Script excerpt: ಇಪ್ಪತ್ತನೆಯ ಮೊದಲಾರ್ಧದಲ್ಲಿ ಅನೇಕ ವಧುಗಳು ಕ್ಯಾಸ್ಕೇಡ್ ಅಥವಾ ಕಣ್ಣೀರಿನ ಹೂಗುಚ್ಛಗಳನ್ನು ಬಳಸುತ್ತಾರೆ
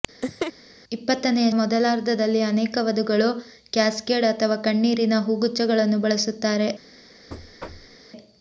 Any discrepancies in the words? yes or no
no